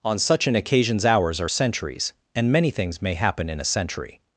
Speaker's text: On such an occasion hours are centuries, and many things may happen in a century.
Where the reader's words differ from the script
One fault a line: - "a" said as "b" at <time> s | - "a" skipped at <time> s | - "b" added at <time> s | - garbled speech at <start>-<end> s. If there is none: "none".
- "occasion" said as "occasions" at 0.6 s